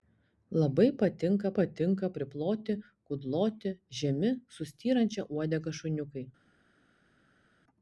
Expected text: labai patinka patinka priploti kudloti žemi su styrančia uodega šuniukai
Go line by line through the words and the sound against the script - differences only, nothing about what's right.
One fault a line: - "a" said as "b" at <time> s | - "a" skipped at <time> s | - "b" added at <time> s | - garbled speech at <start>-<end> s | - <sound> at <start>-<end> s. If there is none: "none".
none